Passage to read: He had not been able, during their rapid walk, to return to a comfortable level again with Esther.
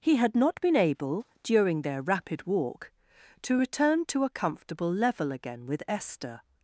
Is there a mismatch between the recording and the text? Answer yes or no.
no